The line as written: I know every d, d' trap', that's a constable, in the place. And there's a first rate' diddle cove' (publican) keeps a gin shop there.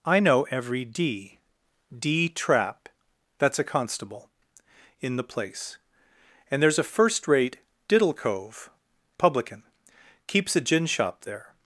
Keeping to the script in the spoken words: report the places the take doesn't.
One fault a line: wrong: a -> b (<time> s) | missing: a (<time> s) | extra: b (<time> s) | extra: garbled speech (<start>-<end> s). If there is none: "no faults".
no faults